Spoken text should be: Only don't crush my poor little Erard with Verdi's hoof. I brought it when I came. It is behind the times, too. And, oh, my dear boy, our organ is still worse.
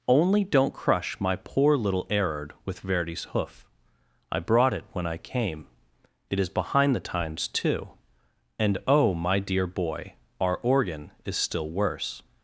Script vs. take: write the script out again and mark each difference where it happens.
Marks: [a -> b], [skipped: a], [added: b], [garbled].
Only don't crush my poor little Erard with Verdi's hoof. I brought it when I came. It is behind the times, too. And, oh, my dear boy, our organ is still worse.